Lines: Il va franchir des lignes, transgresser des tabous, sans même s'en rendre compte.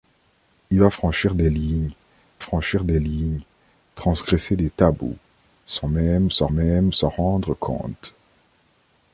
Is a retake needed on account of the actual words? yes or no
yes